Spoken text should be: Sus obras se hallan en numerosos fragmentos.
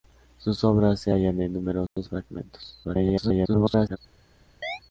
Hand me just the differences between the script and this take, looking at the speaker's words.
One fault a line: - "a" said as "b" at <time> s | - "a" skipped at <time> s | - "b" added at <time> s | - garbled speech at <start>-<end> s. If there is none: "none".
- garbled speech at 2.8-4.0 s